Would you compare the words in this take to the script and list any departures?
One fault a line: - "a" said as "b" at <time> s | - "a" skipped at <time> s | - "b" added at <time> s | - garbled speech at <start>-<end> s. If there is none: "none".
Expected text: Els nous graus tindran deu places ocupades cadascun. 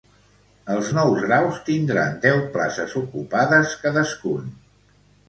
none